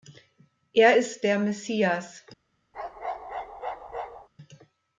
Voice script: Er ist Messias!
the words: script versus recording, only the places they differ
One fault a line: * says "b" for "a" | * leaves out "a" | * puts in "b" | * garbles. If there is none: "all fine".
* puts in "der"